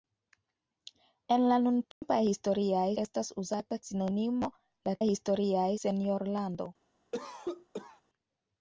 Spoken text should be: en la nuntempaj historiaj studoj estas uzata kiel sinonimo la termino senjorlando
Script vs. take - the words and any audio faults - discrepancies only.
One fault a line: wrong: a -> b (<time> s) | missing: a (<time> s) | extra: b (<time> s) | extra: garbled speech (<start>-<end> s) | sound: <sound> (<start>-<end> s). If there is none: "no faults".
sound: dropout (1.9-2.0 s)
missing: studoj (2.9 s)
missing: kiel (3.8 s)
wrong: termino -> historiaj (5.1 s)
sound: cough (7.1-8.0 s)